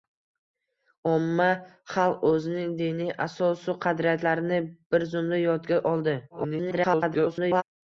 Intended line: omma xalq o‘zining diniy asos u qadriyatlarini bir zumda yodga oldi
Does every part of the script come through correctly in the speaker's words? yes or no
no